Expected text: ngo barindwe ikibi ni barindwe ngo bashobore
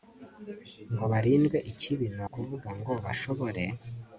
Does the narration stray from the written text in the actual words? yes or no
yes